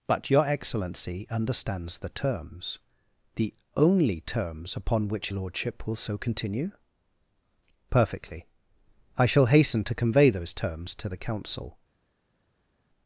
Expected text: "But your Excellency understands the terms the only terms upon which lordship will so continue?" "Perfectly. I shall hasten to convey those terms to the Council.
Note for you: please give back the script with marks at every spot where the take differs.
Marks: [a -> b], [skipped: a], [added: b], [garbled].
"But your Excellency understands the terms the only terms upon which lordship will so continue?" "Perfectly. I shall hasten to convey those terms to the Council.